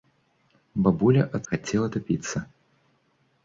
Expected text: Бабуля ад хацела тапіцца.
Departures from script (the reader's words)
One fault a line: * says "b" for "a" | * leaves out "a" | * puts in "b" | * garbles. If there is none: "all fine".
all fine